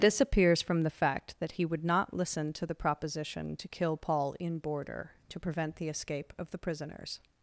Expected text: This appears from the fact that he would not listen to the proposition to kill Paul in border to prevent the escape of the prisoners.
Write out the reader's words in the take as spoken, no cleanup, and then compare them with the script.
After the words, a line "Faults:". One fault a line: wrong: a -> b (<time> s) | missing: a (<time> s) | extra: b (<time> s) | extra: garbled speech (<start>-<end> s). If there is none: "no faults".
This appears from the fact that he would not listen to the proposition to kill Paul in border to prevent the escape of the prisoners.
Faults:
no faults